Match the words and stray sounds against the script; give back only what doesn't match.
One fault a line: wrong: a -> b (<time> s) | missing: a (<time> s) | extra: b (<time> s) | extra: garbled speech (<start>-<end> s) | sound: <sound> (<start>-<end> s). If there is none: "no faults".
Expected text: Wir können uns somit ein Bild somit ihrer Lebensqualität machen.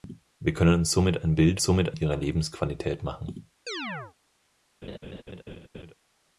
sound: chirp (3.7-4.1 s)
sound: laugh (4.8-6.0 s)